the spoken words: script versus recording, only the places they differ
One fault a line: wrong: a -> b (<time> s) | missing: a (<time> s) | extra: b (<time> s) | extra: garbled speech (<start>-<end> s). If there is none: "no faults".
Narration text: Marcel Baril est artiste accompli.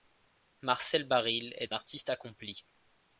no faults